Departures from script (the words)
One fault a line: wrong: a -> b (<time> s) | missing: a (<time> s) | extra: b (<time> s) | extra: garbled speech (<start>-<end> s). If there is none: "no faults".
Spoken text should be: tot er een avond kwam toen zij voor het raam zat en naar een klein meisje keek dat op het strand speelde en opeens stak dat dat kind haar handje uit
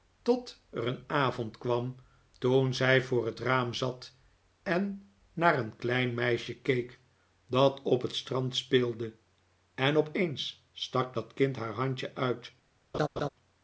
missing: dat (11.3 s)